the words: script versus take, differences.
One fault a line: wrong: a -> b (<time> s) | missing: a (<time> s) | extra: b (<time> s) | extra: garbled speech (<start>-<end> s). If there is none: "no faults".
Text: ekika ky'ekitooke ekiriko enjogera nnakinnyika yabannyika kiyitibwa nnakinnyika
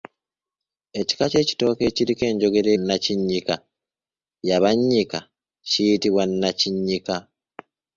no faults